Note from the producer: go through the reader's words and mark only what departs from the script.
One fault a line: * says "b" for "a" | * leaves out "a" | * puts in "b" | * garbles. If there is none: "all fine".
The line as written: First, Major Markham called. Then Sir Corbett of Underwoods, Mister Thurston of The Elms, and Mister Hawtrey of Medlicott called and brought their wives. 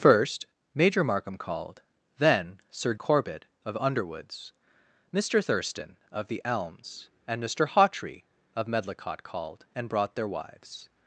all fine